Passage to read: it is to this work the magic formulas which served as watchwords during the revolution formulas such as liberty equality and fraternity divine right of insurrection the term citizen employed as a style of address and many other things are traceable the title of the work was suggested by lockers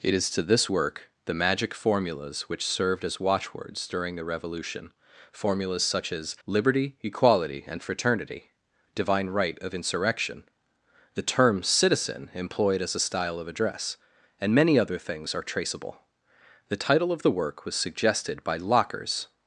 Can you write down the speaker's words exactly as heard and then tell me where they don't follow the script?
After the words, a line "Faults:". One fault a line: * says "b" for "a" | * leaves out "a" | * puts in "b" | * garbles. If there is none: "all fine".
it is to this work the magic formulas which served as watchwords during the revolution formulas such as liberty equality and fraternity divine right of insurrection the term citizen employed as a style of address and many other things are traceable the title of the work was suggested by lockers
Faults:
all fine